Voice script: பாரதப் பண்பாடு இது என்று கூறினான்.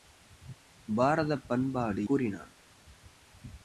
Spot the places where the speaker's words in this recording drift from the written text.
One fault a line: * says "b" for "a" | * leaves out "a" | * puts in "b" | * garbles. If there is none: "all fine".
* leaves out "இது என்று"